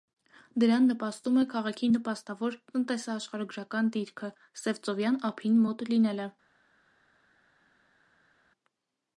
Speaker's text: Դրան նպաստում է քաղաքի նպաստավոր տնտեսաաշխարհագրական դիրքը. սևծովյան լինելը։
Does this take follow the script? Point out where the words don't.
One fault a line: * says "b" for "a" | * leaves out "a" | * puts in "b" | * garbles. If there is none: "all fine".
* puts in "ափին մոտ"